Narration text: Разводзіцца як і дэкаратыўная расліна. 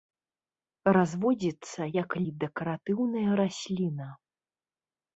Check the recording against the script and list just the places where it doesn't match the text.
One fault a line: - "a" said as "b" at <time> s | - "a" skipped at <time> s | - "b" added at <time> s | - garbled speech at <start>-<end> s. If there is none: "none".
none